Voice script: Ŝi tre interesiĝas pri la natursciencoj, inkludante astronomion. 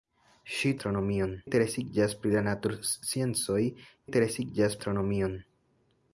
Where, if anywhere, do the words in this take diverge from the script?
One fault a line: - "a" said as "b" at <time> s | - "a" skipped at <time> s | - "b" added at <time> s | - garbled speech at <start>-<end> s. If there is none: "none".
- "tre" said as "astronomion" at 0.8 s
- "inkludante" said as "interesiĝas" at 4.1 s